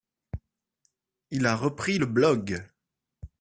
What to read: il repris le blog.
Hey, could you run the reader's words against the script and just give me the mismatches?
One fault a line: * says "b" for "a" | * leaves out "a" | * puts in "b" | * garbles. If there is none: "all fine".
* puts in "a"